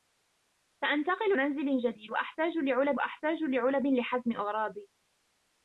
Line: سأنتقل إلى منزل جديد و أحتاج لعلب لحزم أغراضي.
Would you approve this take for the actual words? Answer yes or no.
no